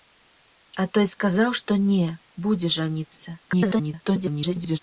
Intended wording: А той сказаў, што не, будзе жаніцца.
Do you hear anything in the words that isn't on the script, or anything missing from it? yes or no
yes